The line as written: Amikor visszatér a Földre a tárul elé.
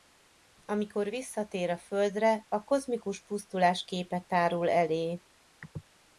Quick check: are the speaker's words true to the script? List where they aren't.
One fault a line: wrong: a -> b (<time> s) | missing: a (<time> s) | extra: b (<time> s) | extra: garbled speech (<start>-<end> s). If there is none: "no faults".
extra: kozmikus pusztulás képe (2.6 s)